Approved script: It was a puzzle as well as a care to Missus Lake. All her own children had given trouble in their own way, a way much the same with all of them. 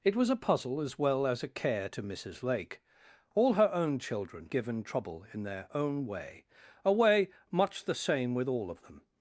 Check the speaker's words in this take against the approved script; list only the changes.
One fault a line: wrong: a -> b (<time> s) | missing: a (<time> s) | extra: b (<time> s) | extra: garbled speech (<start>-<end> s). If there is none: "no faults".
missing: had (4.5 s)